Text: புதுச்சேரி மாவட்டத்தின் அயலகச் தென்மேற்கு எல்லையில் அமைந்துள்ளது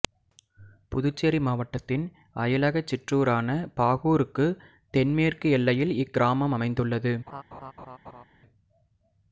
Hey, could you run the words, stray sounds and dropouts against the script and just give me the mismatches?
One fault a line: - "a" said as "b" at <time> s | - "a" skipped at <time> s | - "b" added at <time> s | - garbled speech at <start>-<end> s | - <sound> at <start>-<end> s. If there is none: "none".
- "சிற்றூரான பாகூருக்கு" added at 2.9 s
- "இக்கிராமம்" added at 6.0 s
- laugh at 7.3-8.2 s